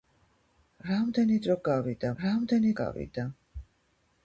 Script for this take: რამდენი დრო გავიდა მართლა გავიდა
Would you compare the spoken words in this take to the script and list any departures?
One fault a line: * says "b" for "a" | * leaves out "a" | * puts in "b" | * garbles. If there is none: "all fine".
* says "რამდენი" for "მართლა"